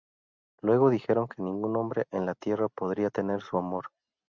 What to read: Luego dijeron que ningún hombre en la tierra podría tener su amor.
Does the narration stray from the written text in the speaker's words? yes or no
no